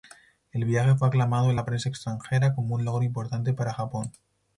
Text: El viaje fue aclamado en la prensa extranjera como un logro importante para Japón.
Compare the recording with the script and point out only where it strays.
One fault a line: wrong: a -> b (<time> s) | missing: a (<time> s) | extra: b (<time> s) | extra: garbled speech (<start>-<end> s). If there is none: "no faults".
no faults